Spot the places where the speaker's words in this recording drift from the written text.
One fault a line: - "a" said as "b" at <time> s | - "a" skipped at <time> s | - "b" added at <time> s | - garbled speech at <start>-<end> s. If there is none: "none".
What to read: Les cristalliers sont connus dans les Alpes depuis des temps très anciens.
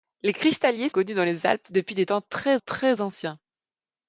- "sont" skipped at 0.9 s
- "très" added at 2.6 s